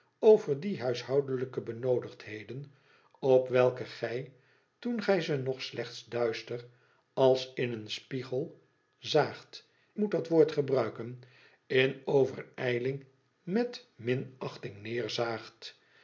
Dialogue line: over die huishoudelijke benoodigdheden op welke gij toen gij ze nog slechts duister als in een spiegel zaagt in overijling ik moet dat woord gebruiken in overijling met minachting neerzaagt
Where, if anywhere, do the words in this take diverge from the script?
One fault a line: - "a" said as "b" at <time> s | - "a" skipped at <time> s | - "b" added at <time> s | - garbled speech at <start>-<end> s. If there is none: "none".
- "in overijling ik" skipped at 9.7 s